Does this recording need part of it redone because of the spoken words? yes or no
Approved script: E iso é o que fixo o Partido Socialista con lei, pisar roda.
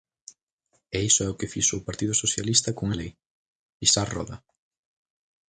no